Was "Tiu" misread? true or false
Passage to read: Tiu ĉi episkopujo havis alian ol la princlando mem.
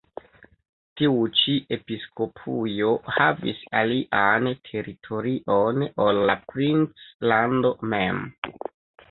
false